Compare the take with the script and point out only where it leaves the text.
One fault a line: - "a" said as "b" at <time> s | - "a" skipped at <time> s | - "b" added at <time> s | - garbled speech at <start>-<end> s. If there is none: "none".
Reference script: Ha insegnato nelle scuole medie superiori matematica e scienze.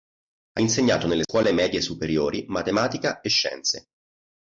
none